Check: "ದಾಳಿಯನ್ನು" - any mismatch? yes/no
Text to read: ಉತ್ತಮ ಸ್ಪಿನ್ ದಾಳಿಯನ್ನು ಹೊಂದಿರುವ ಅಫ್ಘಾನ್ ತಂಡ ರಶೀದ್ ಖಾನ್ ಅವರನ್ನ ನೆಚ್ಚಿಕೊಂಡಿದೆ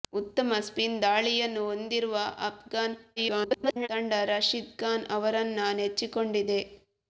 no